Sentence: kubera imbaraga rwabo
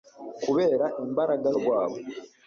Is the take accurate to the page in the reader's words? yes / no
yes